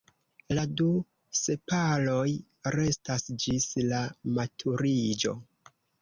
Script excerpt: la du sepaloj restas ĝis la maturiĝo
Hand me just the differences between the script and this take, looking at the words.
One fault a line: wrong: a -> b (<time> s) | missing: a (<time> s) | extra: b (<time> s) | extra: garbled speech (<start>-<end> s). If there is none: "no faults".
no faults